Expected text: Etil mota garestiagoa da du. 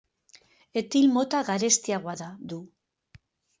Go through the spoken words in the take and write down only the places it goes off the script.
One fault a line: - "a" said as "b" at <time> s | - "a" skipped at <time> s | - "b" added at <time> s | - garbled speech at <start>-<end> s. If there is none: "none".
none